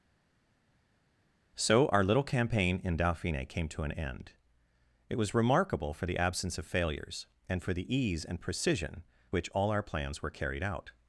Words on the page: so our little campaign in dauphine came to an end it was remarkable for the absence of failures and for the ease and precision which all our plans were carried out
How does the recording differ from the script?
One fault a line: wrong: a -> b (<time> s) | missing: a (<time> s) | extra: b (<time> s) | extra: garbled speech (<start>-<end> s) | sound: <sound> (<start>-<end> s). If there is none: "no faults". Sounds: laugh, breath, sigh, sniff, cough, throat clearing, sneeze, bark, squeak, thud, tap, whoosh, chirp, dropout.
no faults